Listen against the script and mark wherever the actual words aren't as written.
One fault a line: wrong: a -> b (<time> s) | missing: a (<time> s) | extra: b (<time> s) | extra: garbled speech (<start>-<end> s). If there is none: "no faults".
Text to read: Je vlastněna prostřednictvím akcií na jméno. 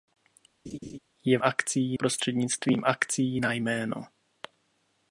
wrong: vlastněna -> akcií (1.4 s)